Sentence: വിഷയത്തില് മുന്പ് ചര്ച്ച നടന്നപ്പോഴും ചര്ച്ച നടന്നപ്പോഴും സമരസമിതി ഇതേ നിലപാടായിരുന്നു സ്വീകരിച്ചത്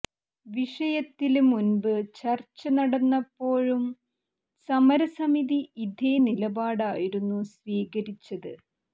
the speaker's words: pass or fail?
fail